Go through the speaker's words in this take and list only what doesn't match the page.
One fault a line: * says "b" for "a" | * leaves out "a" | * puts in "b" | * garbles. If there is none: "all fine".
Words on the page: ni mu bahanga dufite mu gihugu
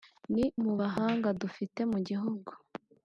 all fine